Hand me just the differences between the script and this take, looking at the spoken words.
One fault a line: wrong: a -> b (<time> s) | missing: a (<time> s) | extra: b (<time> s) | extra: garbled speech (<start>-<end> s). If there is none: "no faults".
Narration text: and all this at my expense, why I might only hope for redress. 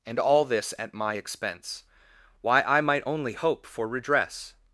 no faults